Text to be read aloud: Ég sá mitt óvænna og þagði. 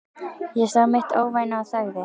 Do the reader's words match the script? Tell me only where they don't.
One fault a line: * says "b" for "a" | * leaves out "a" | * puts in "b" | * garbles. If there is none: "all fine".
all fine